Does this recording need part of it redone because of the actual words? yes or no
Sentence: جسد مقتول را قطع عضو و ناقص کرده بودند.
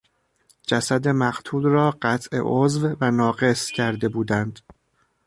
no